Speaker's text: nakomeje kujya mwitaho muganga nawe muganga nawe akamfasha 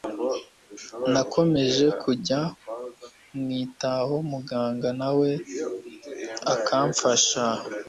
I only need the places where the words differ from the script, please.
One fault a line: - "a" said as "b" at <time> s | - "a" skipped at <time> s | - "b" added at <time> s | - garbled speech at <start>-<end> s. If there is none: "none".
- "muganga nawe" skipped at 5.3 s